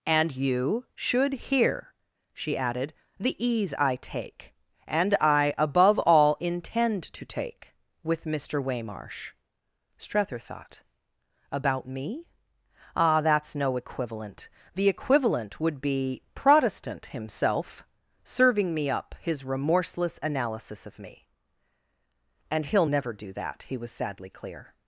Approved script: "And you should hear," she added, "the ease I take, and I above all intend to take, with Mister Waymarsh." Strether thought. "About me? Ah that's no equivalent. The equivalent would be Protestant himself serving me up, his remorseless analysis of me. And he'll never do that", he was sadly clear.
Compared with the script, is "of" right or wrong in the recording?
right